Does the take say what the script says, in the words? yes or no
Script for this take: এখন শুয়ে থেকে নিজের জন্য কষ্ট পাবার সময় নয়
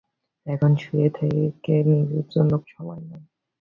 no